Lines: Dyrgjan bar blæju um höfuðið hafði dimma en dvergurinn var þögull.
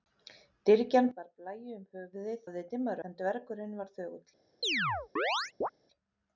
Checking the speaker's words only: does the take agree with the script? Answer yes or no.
yes